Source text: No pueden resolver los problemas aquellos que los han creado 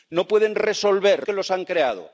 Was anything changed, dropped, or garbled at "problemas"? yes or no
yes